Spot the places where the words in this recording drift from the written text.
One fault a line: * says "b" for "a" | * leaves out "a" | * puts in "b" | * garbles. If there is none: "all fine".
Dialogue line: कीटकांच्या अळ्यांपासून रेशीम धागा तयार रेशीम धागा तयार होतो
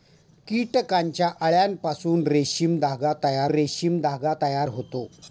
all fine